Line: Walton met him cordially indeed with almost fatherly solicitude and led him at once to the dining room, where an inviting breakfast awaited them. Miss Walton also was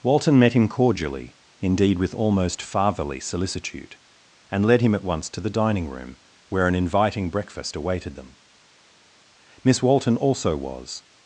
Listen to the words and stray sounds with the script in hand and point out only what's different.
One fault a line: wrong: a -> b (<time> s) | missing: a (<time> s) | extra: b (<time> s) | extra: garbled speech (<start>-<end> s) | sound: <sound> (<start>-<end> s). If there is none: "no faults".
no faults